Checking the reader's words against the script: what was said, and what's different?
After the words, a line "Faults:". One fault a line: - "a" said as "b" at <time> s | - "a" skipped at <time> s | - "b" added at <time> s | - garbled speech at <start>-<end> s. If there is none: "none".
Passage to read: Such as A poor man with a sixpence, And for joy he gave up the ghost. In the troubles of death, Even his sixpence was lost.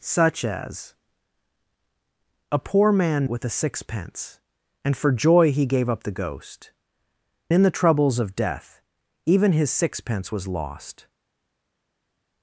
Such as A poor man with a sixpence, And for joy he gave up the ghost. In the troubles of death, Even his sixpence was lost.
Faults:
none